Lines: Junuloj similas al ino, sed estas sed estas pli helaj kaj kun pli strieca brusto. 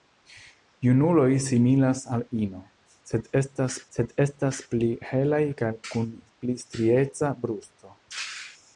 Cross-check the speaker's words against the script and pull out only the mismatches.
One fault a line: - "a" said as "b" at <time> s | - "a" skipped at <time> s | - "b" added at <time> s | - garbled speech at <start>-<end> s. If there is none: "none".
none